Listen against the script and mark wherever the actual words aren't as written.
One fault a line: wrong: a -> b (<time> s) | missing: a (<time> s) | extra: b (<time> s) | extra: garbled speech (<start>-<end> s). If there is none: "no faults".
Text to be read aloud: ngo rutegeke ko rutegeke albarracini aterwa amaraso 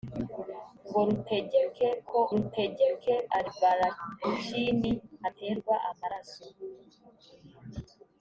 no faults